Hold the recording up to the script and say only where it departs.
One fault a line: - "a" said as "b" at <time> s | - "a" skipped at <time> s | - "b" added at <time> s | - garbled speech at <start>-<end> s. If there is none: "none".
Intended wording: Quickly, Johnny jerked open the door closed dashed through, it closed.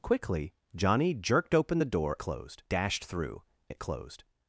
none